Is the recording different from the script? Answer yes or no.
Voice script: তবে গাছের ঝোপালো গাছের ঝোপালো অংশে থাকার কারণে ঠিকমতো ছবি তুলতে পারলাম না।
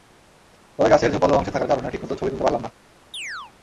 yes